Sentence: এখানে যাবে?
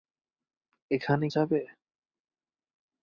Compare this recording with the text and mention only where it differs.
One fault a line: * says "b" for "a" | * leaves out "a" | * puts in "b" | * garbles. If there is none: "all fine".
all fine